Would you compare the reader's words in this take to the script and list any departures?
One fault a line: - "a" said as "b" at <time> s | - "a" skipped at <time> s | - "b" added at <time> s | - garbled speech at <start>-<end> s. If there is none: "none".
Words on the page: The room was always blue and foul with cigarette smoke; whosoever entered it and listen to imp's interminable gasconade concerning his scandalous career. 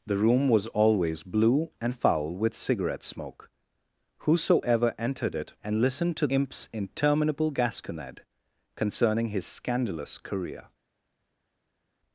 none